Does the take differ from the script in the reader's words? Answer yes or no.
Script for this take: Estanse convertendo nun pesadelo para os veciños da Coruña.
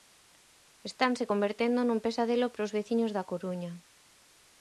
no